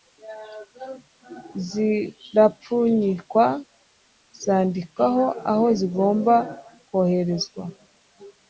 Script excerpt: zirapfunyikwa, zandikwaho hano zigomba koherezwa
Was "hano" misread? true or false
true